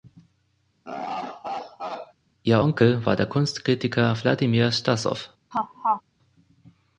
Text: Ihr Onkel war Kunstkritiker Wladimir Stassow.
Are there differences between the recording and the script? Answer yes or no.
yes